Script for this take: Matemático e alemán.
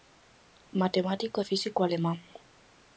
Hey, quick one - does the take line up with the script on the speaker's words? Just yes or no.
no